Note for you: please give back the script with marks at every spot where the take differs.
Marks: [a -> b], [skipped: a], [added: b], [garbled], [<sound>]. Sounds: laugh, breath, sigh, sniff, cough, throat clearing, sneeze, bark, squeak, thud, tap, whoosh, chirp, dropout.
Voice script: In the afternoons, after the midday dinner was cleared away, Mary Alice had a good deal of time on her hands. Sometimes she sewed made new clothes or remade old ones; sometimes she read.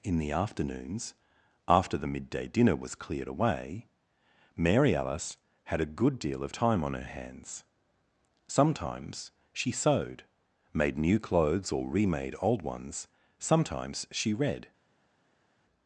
In the afternoons, after the midday dinner was cleared away, Mary Alice had a good deal of time on her hands. Sometimes she sewed made new clothes or remade old ones; sometimes she read.